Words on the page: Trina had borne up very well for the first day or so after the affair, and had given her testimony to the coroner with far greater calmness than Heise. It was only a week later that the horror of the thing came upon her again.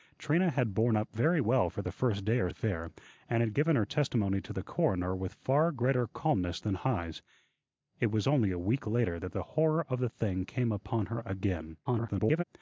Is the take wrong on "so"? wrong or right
wrong